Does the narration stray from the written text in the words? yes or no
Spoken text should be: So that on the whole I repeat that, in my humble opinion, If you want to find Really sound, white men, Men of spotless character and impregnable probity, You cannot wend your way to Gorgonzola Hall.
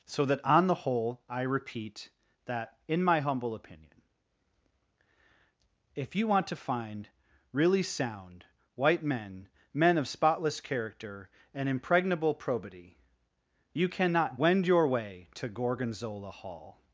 no